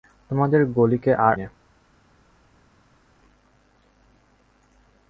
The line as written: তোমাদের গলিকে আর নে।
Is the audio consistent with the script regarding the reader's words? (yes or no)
yes